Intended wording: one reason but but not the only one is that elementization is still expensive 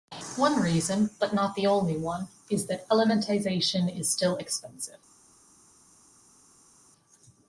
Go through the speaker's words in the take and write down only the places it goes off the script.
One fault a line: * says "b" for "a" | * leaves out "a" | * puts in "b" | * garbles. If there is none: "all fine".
* leaves out "but"